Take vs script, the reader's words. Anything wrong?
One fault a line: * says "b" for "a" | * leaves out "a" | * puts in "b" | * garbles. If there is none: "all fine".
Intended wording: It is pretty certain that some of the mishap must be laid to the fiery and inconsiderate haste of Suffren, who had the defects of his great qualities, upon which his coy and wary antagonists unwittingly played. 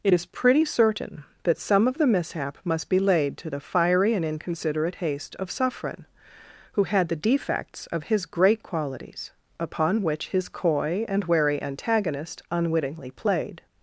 * says "antagonist" for "antagonists"